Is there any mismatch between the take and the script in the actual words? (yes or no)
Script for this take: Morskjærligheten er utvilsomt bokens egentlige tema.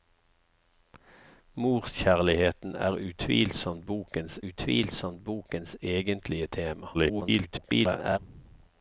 yes